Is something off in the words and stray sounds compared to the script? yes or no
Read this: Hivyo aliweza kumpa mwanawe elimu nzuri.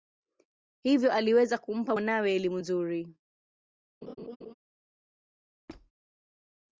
yes